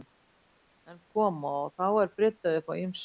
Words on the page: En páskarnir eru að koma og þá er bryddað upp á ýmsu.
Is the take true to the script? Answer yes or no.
no